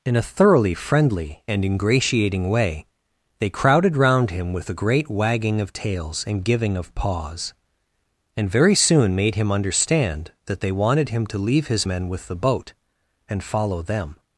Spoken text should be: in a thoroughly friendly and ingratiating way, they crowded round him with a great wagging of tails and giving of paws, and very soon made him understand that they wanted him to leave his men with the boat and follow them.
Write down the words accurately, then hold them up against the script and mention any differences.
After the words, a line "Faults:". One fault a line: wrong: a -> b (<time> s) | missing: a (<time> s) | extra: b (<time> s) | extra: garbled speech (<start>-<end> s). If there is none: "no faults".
in a thoroughly friendly and ingratiating way, they crowded round him with a great wagging of tails and giving of paws, and very soon made him understand that they wanted him to leave his men with the boat and follow them.
Faults:
no faults